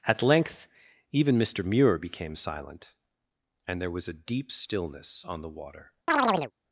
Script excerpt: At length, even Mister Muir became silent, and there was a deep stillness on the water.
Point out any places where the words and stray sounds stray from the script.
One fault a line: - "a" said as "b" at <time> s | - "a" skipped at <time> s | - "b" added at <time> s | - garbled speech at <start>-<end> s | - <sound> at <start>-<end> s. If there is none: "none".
- chirp at 6.1-6.5 s